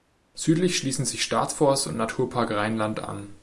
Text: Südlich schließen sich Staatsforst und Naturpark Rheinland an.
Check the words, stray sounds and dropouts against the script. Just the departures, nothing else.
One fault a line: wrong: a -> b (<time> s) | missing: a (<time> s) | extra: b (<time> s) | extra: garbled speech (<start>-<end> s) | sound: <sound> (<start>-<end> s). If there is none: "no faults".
no faults